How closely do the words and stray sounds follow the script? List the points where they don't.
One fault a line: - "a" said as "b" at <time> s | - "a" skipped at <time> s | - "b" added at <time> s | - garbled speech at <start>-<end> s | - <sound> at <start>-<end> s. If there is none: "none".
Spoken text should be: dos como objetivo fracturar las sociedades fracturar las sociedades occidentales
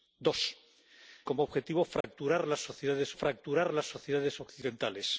- dropout at 2.0-2.0 s